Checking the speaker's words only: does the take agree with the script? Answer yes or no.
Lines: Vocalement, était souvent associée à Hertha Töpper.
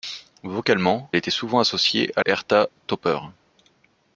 yes